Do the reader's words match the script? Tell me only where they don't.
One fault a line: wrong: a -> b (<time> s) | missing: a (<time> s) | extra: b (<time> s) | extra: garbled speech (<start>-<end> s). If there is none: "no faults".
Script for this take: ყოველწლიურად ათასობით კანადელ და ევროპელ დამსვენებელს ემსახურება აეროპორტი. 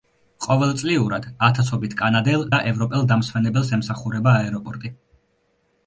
no faults